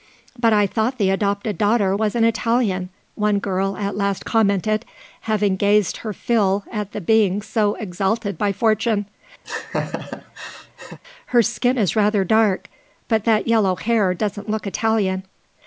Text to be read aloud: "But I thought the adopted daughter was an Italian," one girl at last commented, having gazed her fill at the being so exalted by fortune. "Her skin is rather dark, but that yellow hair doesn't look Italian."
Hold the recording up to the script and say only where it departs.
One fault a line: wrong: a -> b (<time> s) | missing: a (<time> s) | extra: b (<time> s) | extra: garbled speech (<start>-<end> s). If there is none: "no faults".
no faults